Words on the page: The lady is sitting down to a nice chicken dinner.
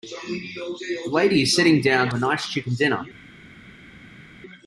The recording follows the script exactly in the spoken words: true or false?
false